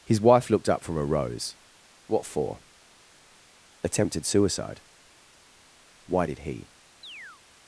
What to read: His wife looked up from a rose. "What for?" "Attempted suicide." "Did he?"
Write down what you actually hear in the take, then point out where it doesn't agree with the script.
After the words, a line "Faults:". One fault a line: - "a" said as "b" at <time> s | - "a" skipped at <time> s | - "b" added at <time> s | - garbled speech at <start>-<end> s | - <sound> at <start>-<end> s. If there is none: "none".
His wife looked up from a rose. "What for?" "Attempted suicide." "Why did he?"
Faults:
- "Why" added at 6.1 s
- chirp at 7.0-7.4 s